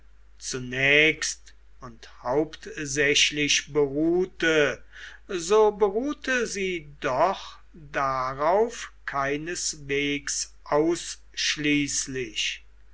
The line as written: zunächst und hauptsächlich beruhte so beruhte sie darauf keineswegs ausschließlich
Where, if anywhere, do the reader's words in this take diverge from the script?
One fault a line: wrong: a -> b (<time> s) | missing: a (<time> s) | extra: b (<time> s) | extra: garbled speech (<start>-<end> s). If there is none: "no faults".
extra: doch (7.0 s)